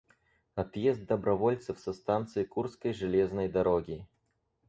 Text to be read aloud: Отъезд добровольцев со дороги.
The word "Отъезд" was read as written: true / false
true